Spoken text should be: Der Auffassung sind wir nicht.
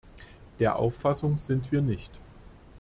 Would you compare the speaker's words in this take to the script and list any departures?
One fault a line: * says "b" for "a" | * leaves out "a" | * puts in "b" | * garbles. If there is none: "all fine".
all fine